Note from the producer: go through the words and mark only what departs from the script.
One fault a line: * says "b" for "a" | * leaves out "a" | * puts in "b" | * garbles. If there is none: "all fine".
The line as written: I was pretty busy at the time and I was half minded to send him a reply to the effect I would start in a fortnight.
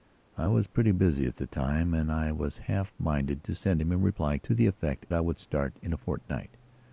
all fine